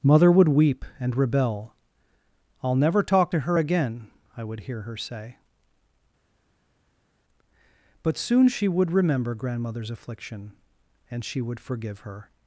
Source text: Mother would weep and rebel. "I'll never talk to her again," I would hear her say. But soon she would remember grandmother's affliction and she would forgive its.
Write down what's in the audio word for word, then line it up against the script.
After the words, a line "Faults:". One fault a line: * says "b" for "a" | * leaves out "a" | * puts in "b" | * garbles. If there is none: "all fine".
Mother would weep and rebel. "I'll never talk to her again," I would hear her say. But soon she would remember grandmother's affliction and she would forgive her.
Faults:
* says "her" for "its"